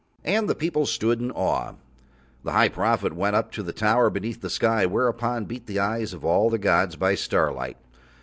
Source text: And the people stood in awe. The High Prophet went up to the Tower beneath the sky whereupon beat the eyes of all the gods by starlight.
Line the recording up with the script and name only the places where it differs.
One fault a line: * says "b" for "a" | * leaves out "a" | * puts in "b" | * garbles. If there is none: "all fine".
all fine